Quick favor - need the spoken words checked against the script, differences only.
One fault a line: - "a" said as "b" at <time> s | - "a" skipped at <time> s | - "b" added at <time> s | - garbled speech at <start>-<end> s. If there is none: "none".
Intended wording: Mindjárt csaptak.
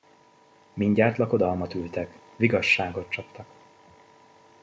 - "lakodalmat ültek vigasságot" added at 1.2 s